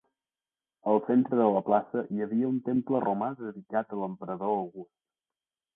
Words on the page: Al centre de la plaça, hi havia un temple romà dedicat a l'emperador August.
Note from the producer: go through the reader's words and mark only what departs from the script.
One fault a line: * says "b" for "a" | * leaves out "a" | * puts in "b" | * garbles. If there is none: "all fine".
all fine